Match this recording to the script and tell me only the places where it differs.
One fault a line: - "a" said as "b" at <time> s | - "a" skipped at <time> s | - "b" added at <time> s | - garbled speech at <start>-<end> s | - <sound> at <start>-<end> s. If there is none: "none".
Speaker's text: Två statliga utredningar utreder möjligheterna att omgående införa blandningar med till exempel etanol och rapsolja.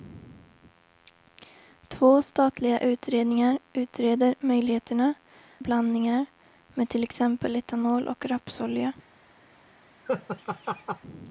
- "att omgående införa" skipped at 5.1 s
- laugh at 10.1-11.0 s